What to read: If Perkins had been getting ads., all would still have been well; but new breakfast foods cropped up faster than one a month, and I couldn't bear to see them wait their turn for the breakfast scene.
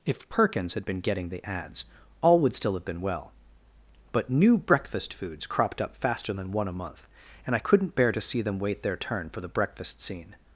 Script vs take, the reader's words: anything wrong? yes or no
yes